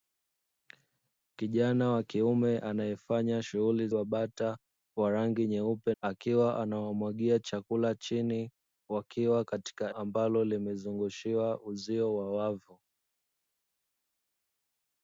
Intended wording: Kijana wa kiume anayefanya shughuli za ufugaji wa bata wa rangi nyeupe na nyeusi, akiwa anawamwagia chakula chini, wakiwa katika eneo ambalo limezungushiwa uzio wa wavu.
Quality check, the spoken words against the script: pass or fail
fail